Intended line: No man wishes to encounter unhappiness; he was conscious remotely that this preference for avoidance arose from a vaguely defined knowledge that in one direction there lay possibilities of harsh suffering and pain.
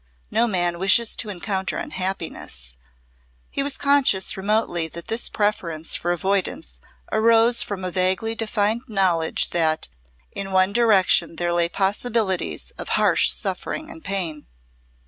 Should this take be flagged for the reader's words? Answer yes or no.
no